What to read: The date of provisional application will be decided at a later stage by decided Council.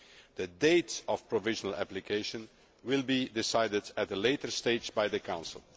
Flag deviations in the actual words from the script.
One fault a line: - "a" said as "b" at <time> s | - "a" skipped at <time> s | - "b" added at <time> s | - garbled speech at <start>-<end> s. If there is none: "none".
- "decided" said as "the" at 5.1 s